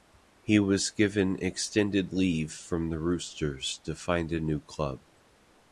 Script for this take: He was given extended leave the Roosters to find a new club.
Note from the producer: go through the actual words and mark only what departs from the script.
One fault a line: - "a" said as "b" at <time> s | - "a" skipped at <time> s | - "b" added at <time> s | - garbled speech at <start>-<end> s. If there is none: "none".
- "from" added at 2.5 s